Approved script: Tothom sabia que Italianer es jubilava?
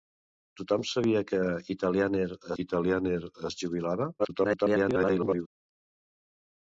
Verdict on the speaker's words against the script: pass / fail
fail